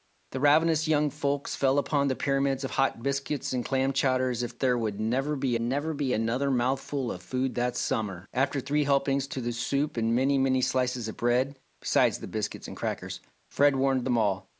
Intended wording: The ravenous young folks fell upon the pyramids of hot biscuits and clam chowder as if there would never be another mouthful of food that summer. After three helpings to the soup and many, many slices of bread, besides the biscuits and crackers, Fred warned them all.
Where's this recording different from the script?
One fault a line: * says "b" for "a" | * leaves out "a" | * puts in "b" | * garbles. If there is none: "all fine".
* puts in "never be"